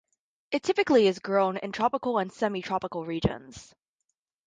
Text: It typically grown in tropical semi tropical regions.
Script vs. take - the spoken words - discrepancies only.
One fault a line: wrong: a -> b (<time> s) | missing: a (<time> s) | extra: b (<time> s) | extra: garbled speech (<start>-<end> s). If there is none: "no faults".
extra: is (1.1 s)
extra: and (2.2 s)